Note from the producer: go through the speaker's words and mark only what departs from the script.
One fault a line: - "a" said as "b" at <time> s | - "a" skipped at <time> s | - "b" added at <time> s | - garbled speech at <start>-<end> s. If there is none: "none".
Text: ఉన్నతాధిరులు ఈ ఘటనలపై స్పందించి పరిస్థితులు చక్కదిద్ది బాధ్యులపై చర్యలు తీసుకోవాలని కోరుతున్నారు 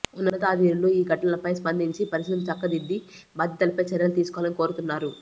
none